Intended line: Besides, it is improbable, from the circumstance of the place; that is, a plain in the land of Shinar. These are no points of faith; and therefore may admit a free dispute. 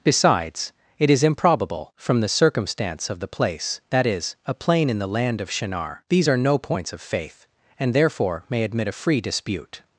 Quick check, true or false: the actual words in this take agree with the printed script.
true